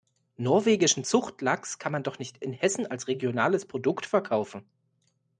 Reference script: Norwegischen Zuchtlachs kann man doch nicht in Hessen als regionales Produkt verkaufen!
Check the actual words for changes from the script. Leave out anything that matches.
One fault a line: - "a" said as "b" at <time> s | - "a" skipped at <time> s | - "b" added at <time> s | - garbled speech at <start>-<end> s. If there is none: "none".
none